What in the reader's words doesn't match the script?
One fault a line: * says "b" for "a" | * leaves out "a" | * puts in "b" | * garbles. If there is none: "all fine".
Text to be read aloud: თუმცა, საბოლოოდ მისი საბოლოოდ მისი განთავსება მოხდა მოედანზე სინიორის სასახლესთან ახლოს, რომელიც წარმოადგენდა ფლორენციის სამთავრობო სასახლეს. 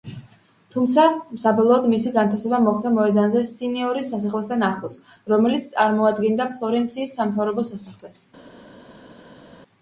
* leaves out "საბოლოოდ მისი"